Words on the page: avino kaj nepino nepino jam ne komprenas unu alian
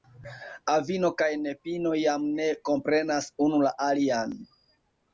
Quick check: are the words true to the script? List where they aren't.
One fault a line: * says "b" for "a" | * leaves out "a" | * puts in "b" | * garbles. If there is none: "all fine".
* leaves out "nepino"
* puts in "la"